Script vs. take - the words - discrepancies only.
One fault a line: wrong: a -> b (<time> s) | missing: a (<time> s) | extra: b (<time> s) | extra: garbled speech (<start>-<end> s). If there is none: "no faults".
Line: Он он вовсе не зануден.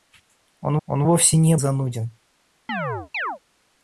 no faults